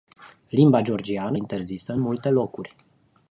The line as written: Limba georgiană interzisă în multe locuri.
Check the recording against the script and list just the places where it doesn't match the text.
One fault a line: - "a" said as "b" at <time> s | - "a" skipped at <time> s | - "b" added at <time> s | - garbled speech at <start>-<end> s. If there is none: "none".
none